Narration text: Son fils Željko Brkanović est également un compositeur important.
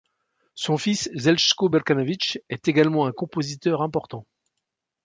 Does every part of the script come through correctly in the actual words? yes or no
yes